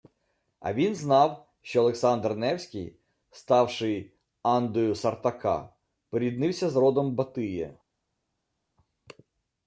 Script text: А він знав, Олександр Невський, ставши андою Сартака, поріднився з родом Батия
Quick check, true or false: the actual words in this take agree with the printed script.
false